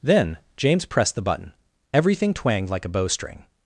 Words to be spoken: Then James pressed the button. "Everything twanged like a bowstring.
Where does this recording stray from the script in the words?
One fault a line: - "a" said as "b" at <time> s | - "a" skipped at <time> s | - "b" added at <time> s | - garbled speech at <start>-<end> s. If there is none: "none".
none